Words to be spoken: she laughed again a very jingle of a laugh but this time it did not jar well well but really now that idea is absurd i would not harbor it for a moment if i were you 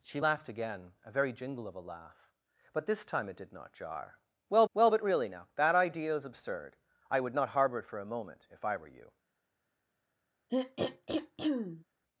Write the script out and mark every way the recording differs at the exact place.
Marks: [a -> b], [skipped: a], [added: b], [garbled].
she laughed again a very jingle of a laugh but this time it did not jar well well but really now that idea is absurd i would not harbor it for a moment if i were you